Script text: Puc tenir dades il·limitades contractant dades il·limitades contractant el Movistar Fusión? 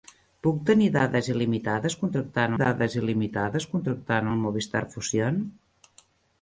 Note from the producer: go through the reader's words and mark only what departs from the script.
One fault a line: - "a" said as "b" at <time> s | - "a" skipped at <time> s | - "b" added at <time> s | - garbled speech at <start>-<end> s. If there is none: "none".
none